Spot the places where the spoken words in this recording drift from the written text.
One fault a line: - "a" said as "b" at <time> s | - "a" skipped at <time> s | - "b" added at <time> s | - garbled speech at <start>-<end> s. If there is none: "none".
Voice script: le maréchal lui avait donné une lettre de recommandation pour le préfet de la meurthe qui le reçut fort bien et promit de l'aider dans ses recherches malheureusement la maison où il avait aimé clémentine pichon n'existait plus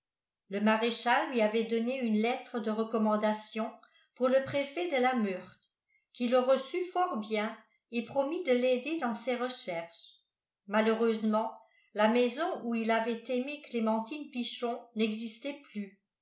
none